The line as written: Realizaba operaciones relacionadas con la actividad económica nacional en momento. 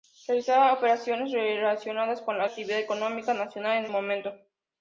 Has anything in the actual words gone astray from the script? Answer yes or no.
no